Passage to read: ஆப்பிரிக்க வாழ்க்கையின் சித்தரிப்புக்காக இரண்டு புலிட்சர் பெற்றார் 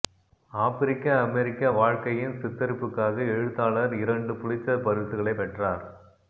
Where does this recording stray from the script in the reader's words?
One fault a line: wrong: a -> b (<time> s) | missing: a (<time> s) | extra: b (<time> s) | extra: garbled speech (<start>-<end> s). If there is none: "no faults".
extra: அமெரிக்க (1.2 s)
extra: எழுத்தாளர் (3.3 s)
extra: பரிசுகளை (4.8 s)